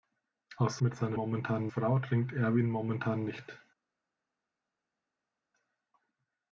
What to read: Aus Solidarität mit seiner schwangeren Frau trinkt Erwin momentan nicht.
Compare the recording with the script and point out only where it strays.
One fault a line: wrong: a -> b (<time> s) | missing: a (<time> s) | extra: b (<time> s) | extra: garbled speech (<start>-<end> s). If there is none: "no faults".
missing: Solidarität (0.8 s)
wrong: schwangeren -> momentan (1.1 s)